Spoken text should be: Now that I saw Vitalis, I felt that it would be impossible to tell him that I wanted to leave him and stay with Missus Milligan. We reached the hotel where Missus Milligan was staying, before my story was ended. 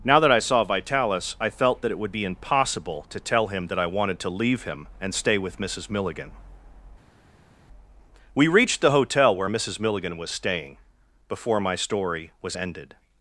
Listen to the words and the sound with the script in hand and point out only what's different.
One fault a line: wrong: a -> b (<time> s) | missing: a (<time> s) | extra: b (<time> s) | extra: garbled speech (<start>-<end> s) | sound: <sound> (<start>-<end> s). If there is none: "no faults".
no faults